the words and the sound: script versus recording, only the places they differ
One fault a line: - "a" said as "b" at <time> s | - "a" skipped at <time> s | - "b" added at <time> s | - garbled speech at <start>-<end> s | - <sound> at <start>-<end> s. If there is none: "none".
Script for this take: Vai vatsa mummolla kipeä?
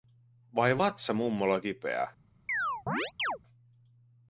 - chirp at 2.5-3.4 s